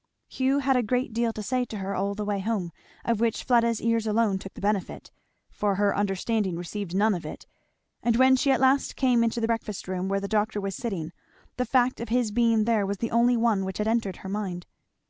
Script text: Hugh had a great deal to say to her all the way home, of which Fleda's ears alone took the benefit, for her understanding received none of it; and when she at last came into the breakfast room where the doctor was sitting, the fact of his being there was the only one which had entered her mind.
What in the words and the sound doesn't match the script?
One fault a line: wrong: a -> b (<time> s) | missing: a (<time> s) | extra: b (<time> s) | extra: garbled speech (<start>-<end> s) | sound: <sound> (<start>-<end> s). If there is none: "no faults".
no faults